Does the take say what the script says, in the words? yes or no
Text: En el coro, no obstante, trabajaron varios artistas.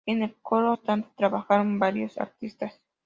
no